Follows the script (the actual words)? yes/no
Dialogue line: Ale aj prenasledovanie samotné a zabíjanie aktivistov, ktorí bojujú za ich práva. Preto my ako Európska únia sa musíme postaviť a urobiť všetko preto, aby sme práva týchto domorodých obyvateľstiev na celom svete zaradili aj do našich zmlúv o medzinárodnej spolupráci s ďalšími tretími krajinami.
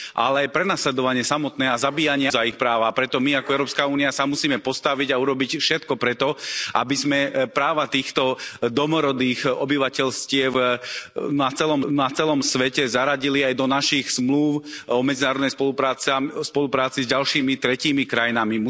no